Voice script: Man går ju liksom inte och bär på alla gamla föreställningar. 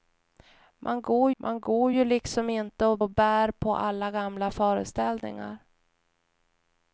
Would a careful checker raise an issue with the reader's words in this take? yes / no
yes